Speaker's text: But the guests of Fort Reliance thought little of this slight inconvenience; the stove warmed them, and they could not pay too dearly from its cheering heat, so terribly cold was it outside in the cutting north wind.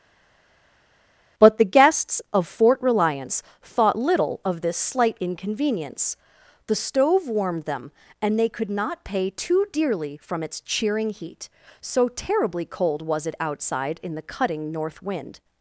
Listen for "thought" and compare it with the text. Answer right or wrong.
right